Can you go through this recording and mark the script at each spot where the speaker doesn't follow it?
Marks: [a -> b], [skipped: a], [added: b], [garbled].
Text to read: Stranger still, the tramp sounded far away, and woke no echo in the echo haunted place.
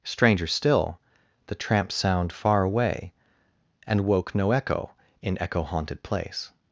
Stranger still, the tramp [sounded -> sound] far away, and woke no echo in [skipped: the] echo haunted place.